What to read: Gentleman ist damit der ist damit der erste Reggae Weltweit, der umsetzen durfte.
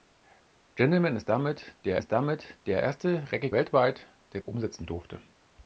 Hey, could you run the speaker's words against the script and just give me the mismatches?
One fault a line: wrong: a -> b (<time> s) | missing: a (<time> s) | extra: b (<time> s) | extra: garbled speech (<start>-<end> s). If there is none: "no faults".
no faults